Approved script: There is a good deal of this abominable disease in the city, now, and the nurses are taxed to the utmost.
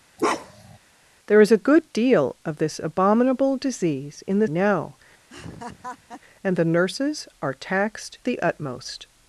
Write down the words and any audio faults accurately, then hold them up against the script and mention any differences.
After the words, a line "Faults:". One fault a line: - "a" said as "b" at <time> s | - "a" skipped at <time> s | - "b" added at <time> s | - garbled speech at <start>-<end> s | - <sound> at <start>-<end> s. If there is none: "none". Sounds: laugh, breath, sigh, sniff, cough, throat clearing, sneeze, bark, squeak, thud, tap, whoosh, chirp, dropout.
There is a good deal of this abominable disease in the now, and the nurses are taxed the utmost.
Faults:
- bark at 0.2-0.8 s
- "city" skipped at 4.5 s
- laugh at 5.3-6.2 s
- "to" skipped at 8.2 s